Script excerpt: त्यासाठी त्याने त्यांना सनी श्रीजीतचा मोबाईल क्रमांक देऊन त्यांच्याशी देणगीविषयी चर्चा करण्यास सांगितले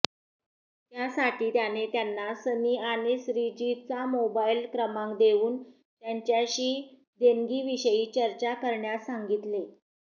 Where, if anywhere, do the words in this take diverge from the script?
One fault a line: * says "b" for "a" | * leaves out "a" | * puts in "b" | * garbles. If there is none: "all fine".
* puts in "आणि"